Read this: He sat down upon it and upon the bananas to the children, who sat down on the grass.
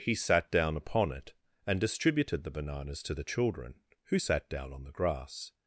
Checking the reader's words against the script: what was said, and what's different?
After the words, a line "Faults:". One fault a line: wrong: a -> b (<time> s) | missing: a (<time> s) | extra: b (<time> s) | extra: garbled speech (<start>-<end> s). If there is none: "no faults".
He sat down upon it and distributed the bananas to the children, who sat down on the grass.
Faults:
wrong: upon -> distributed (1.8 s)